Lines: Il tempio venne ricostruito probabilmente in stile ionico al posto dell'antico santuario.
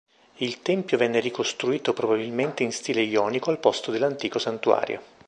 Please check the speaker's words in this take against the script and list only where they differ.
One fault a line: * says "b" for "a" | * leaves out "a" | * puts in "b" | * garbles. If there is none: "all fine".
all fine